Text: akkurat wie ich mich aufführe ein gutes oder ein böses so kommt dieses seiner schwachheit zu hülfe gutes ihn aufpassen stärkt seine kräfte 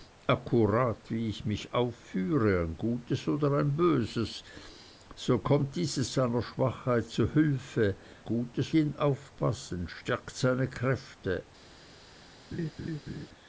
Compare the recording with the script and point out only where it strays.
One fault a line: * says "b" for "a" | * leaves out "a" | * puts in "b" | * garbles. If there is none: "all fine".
all fine